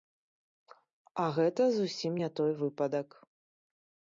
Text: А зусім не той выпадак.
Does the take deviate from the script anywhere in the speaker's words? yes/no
yes